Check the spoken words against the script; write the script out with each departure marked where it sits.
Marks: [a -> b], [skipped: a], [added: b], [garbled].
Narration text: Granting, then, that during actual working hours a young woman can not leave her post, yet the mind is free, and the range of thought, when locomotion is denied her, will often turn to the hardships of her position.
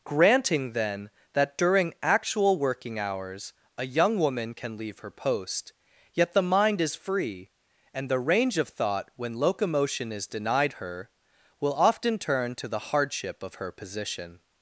Granting, then, that during actual working hours a young woman can [skipped: not] leave her post, yet the mind is free, and the range of thought, when locomotion is denied her, will often turn to the [hardships -> hardship] of her position.